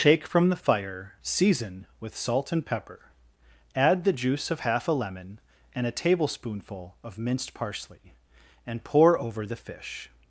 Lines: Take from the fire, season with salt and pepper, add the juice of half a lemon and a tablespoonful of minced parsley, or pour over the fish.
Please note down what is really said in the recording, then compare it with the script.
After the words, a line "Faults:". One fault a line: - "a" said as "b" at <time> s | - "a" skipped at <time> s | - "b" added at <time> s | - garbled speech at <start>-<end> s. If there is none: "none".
Take from the fire, season with salt and pepper, add the juice of half a lemon and a tablespoonful of minced parsley, and pour over the fish.
Faults:
- "or" said as "and" at 8.7 s